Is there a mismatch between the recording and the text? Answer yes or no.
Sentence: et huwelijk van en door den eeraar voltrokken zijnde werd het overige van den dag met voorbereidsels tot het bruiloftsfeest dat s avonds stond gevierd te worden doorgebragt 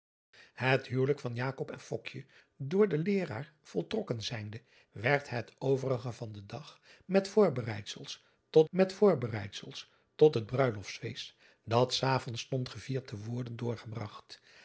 yes